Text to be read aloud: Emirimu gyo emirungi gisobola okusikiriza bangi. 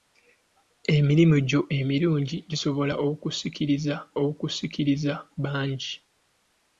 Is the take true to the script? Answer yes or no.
no